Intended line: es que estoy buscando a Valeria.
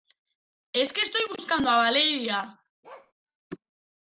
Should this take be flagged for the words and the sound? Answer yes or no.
yes